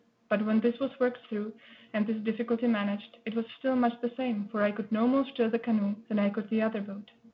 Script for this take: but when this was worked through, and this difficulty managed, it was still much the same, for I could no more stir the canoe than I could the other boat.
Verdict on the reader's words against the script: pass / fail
pass